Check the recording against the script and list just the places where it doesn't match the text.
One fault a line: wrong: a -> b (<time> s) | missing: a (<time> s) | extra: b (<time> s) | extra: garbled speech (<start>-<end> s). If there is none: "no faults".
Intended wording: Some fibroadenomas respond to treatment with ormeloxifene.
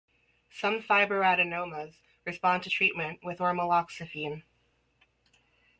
no faults